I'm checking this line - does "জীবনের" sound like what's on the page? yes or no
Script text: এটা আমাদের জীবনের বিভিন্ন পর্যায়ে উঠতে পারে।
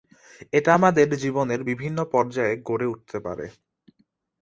yes